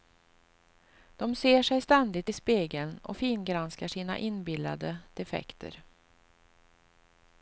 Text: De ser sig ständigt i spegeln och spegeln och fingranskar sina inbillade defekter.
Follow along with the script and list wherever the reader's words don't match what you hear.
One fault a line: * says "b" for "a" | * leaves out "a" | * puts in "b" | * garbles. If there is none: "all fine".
* leaves out "spegeln och"